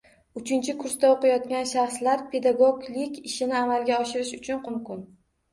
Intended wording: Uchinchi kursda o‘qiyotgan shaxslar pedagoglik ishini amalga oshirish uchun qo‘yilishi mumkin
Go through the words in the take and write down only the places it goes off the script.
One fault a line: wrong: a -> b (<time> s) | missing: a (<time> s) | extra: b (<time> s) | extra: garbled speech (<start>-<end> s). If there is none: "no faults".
missing: qo‘yilishi (4.6 s)